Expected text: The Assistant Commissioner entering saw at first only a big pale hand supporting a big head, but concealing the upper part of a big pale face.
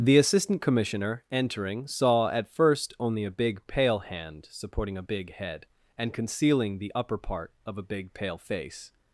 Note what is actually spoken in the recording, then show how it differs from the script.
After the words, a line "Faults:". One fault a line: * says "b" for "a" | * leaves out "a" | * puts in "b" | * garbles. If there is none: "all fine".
The Assistant Commissioner entering saw at first only a big pale hand supporting a big head, and concealing the upper part of a big pale face.
Faults:
* says "and" for "but"